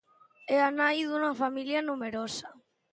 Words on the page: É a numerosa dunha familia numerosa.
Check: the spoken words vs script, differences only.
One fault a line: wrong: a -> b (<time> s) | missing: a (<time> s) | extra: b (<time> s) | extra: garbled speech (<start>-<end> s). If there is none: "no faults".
wrong: numerosa -> nai (0.8 s)